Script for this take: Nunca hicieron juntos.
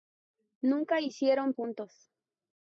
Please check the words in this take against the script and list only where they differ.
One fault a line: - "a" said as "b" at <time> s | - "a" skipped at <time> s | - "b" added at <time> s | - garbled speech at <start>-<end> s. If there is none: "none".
none